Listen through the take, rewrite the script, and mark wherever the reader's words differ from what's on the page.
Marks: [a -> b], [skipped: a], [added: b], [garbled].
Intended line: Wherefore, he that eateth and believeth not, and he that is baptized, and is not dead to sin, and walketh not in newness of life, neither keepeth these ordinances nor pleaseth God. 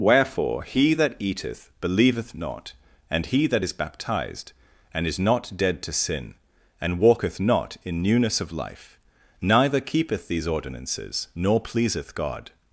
Wherefore, he that eateth [skipped: and] believeth not, and he that is baptized, and is not dead to sin, and walketh not in newness of life, neither keepeth these ordinances nor pleaseth God.